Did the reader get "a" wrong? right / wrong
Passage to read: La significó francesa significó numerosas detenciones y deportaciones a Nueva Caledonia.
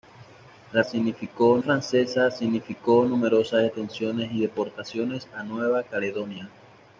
right